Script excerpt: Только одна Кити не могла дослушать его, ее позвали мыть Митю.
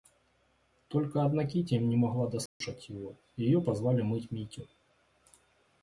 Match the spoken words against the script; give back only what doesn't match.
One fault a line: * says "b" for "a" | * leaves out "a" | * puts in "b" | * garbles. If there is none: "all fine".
all fine